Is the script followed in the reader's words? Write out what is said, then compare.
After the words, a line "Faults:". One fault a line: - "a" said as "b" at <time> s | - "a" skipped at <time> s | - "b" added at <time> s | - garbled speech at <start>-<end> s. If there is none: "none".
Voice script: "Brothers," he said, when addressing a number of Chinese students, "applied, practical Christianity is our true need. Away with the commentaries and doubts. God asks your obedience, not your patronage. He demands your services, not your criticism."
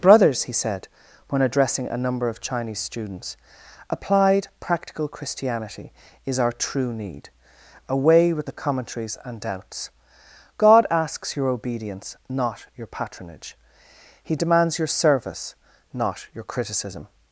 "Brothers," he said, when addressing a number of Chinese students, "applied, practical Christianity is our true need. Away with the commentaries and doubts. God asks your obedience, not your patronage. He demands your service, not your criticism."
Faults:
- "services" said as "service" at 14.9 s